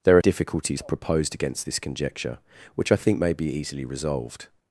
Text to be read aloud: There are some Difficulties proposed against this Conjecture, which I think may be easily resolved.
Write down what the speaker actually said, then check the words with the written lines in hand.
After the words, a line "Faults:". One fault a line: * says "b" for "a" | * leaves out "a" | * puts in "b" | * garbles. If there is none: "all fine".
There are Difficulties proposed against this Conjecture, which I think may be easily resolved.
Faults:
* leaves out "some"